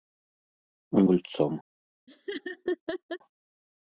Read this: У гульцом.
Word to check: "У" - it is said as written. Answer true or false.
true